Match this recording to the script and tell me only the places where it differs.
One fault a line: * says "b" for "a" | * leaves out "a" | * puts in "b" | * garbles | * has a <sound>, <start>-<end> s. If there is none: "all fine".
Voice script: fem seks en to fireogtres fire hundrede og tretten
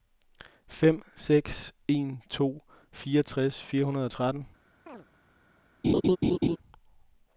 * has a chirp, 4.9-5.1 s
* has a laugh, 5.8-6.6 s